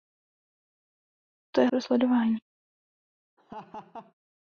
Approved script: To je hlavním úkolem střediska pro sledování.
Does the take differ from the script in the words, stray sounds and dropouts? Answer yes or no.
yes